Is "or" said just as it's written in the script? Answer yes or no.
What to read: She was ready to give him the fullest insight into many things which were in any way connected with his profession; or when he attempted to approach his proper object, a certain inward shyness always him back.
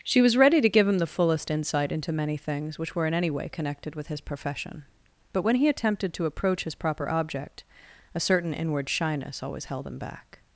no